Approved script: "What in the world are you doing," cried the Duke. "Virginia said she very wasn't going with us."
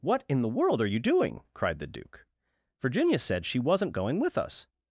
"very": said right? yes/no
no